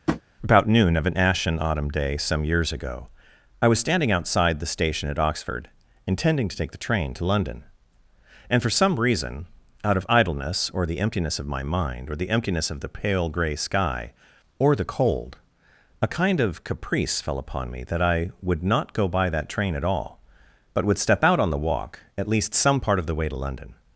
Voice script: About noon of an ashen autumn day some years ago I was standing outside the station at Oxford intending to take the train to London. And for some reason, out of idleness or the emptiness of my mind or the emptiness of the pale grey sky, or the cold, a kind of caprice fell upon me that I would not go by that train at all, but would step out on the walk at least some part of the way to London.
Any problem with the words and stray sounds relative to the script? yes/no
yes